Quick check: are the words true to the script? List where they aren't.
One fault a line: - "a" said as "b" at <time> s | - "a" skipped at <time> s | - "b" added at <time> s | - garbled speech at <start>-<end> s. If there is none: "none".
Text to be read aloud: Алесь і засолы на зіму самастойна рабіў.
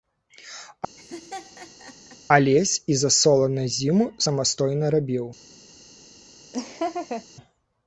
none